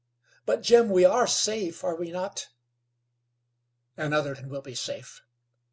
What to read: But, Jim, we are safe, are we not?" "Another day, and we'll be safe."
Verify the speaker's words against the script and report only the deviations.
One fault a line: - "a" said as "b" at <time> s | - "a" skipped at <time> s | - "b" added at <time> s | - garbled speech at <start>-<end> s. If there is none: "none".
- "day" skipped at 4.3 s